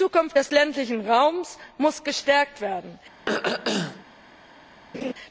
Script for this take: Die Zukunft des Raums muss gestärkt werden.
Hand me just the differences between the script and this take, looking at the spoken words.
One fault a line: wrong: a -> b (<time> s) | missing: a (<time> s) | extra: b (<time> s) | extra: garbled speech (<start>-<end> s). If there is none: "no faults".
extra: ländlichen (0.5 s)